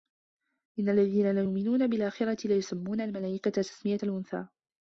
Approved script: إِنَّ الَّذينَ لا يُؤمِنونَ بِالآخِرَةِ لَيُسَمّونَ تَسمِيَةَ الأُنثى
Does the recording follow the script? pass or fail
fail